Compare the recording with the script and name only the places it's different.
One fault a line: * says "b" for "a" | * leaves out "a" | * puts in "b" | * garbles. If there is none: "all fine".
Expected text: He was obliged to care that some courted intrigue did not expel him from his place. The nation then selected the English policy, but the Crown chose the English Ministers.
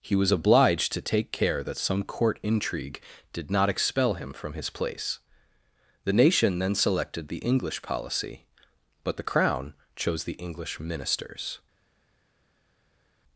* puts in "take"
* says "court" for "courted"